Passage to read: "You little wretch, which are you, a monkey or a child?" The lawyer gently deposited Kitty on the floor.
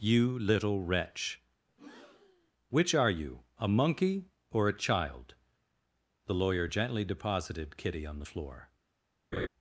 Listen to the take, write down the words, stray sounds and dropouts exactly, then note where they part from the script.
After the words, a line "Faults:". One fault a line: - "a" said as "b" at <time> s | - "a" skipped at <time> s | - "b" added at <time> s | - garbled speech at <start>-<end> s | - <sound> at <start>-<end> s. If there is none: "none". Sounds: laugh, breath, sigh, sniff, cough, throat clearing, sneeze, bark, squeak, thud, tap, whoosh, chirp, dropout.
"You little wretch, which are you, a monkey or a child?" The lawyer gently deposited Kitty on the floor.
Faults:
- breath at 1.7-2.5 s
- laugh at 9.3-9.5 s